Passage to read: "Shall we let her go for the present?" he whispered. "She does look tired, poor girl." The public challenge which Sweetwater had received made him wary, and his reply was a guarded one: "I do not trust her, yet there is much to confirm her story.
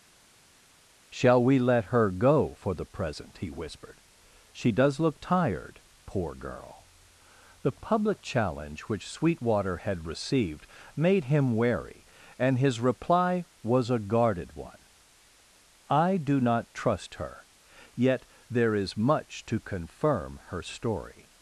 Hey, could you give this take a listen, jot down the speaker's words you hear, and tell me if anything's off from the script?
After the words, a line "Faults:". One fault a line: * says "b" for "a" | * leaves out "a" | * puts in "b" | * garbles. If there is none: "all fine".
"Shall we let her go for the present?" he whispered. "She does look tired, poor girl." The public challenge which Sweetwater had received made him wary, and his reply was a guarded one: "I do not trust her, yet there is much to confirm her story.
Faults:
all fine